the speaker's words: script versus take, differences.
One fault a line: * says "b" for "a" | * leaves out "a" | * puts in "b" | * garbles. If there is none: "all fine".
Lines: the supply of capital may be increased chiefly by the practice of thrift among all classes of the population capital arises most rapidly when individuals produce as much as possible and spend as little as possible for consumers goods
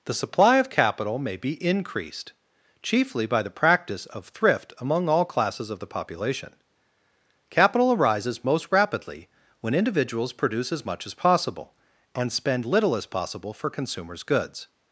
* leaves out "as"